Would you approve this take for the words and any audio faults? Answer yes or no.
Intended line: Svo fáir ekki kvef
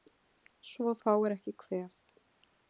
yes